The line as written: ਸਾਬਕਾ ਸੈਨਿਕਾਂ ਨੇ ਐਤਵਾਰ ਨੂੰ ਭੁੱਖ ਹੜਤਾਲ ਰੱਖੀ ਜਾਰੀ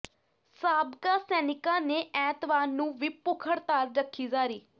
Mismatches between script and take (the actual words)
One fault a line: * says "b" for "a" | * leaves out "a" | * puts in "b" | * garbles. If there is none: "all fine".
* puts in "ਵੀ"